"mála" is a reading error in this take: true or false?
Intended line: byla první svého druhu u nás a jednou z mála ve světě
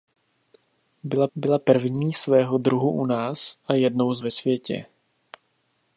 true